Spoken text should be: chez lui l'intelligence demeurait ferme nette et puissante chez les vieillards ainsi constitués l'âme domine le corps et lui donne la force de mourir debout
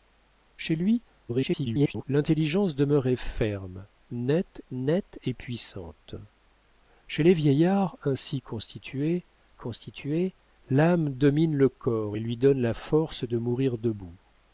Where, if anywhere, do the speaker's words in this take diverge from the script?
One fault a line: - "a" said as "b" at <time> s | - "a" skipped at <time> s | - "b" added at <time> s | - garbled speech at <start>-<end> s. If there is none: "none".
- garbled speech at 1.3-2.0 s
- "nette" added at 4.7 s
- "constitués" added at 9.6 s